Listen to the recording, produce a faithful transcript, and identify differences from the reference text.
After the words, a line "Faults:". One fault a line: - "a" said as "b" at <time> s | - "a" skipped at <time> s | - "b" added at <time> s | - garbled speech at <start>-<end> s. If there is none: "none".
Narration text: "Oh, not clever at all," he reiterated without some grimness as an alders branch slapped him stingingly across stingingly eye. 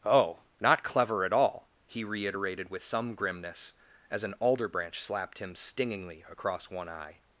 "Oh, not clever at all," he reiterated with some grimness as an alder branch slapped him stingingly across one eye.
Faults:
- "without" said as "with" at 2.7 s
- "alders" said as "alder" at 4.4 s
- "stingingly" said as "one" at 6.7 s